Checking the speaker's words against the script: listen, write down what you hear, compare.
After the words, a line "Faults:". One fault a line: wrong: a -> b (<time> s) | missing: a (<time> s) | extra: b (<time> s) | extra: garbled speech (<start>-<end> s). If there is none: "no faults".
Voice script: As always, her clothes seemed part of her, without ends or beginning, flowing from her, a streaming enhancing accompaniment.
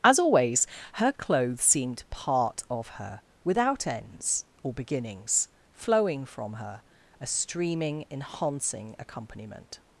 As always, her clothes seemed part of her, without ends or beginnings, flowing from her, a streaming enhancing accompaniment.
Faults:
wrong: beginning -> beginnings (4.7 s)